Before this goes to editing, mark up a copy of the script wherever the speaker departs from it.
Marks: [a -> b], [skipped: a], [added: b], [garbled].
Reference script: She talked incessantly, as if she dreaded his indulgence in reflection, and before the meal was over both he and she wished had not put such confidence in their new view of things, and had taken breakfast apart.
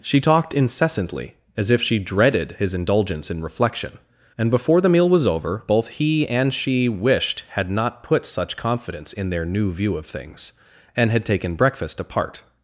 She talked incessantly, as if she dreaded his indulgence in reflection, and before the meal was over both he and she wished had not put such confidence in their new view of things, and had taken breakfast apart.